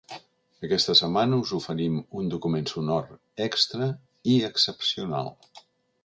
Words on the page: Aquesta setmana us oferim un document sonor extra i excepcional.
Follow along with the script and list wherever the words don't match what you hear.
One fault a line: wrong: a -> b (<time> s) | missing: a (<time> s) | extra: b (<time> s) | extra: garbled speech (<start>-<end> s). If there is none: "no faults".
no faults